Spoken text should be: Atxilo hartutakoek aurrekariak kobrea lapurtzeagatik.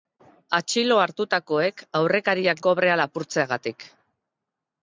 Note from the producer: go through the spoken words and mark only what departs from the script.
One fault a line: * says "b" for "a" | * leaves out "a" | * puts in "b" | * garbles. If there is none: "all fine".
all fine